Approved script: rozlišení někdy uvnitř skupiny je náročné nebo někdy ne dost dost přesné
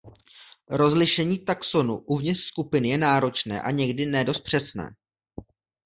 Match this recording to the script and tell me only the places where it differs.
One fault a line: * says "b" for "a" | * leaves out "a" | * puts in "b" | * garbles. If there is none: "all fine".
* says "taxonů" for "někdy"
* says "a" for "nebo"
* leaves out "dost"